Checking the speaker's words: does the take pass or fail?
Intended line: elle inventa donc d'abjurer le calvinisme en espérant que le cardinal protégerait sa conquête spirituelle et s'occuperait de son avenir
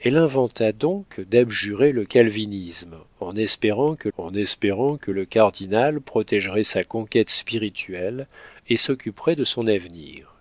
fail